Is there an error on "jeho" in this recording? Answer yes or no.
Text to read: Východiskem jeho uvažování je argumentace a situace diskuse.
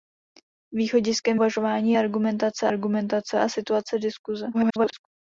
yes